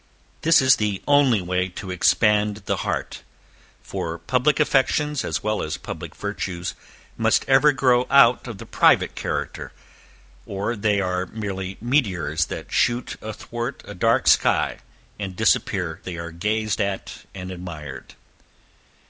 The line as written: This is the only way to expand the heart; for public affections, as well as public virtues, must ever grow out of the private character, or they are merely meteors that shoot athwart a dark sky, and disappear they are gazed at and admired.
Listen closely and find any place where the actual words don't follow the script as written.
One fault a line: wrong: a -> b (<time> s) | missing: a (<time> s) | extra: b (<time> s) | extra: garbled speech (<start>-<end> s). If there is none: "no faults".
no faults